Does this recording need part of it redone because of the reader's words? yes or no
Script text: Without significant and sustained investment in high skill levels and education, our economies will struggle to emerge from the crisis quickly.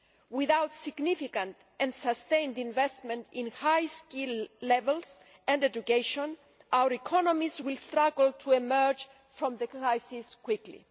no